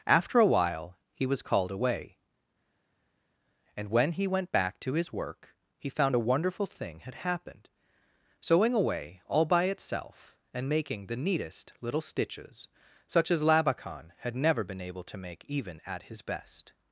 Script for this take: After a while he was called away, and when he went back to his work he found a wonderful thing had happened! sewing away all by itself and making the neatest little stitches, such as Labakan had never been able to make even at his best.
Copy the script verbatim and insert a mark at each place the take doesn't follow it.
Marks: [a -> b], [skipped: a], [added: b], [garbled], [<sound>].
After a while he was called away, and when he went back to his work he found a wonderful thing had happened! sewing away all by itself and making the neatest little stitches, such as Labakan had never been able to make even at his best.